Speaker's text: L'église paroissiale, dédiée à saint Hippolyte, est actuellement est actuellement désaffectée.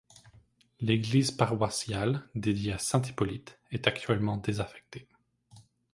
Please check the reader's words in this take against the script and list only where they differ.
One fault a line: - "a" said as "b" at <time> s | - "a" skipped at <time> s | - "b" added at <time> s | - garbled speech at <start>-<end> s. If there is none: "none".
- "est actuellement" skipped at 4.4 s